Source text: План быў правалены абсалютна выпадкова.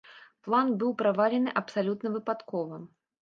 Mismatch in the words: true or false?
false